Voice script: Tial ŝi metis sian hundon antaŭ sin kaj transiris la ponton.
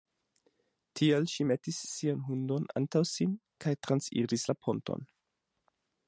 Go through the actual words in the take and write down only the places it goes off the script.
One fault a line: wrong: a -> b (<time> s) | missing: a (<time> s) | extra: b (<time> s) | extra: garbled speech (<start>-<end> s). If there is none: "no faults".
no faults